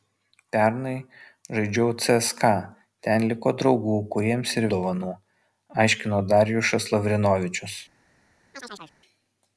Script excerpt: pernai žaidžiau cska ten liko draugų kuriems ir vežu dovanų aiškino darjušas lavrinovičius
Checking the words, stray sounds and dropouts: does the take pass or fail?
fail